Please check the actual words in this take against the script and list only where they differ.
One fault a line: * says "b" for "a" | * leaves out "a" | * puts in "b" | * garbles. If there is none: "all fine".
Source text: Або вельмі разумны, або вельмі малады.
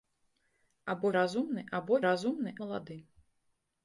* leaves out "вельмі"
* says "разумны" for "вельмі"